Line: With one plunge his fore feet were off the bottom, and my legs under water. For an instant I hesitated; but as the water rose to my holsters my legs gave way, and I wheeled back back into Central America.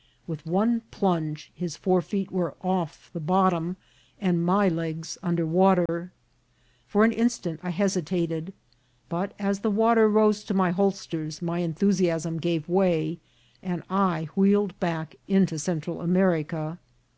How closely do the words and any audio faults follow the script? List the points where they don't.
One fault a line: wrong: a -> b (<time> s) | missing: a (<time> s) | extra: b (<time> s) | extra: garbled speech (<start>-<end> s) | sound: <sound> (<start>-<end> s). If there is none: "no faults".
sound: dropout (5.9-5.9 s)
wrong: legs -> enthusiasm (11.6 s)
missing: back (15.2 s)